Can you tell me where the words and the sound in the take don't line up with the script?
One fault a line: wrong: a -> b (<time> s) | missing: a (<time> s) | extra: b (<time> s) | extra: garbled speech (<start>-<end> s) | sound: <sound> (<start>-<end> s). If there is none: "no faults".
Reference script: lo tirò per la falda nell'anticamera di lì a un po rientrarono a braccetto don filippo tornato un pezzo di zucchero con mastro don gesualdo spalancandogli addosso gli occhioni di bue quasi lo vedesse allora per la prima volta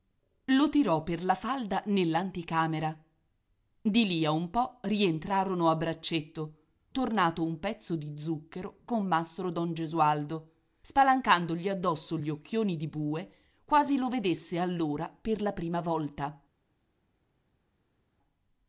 missing: don filippo (6.5 s)